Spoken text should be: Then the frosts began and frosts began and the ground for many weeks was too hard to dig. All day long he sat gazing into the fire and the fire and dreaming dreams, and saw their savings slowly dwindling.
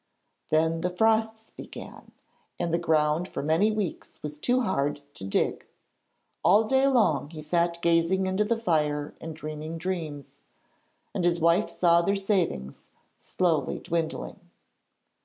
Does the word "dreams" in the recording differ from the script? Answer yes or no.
yes